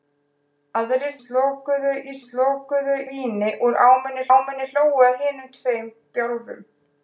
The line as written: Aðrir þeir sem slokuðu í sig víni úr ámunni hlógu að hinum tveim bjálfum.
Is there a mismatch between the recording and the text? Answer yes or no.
yes